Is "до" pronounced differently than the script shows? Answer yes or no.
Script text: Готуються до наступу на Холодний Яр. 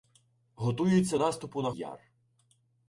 yes